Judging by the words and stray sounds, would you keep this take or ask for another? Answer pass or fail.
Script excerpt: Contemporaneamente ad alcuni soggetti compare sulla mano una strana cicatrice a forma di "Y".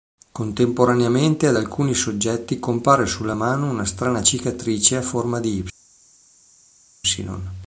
pass